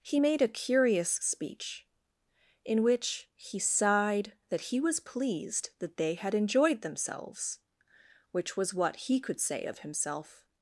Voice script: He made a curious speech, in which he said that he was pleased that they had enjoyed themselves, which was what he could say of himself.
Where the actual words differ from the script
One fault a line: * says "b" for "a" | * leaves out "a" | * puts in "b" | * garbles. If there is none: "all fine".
* says "sighed" for "said"